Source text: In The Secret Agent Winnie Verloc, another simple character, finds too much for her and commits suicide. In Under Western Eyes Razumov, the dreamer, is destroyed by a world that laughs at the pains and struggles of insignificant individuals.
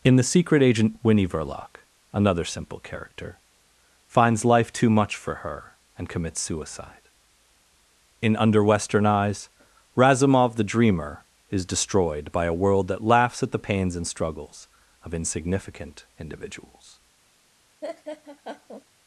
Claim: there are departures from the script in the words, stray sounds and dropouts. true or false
true